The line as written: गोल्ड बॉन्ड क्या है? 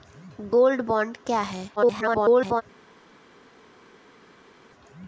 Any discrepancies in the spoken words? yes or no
yes